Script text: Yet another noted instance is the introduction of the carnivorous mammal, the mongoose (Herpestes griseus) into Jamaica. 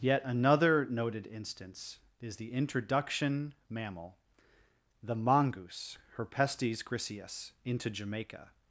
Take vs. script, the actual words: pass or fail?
fail